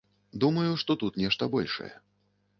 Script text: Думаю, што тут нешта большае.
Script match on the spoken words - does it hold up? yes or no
yes